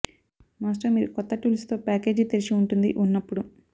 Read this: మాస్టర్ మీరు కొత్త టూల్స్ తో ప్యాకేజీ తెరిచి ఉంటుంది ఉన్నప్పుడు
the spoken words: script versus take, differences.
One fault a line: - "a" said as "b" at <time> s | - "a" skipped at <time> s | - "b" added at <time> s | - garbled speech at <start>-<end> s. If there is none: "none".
none